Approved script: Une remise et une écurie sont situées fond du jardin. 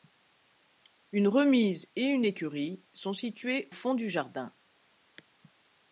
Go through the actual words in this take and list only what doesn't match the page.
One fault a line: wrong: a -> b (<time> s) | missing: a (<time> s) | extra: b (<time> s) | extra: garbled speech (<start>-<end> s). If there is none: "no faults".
no faults